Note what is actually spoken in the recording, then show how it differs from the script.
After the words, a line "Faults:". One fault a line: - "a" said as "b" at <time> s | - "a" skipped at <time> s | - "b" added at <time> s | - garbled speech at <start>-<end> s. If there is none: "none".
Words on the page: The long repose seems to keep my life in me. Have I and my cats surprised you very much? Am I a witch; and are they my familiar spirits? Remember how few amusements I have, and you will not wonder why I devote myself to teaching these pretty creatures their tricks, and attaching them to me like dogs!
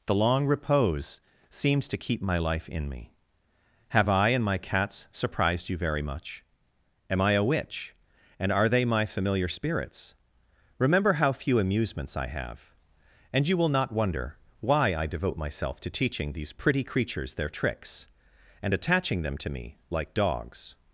The long repose seems to keep my life in me. Have I and my cats surprised you very much? Am I a witch; and are they my familiar spirits? Remember how few amusements I have, and you will not wonder why I devote myself to teaching these pretty creatures their tricks, and attaching them to me like dogs!
Faults:
none